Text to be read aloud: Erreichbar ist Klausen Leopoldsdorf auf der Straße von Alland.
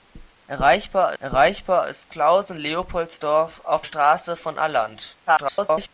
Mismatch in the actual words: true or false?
true